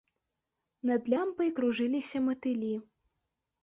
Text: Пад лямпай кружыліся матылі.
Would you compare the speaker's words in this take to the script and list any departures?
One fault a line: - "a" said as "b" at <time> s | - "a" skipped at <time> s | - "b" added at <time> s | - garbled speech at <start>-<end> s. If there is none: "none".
- "Пад" said as "Над" at 0.9 s